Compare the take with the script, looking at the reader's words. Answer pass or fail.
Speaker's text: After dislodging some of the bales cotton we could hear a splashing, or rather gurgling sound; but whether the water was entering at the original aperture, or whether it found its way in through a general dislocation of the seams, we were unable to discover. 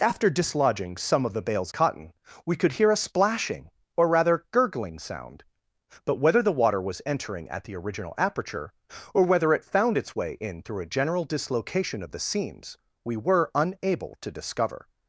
pass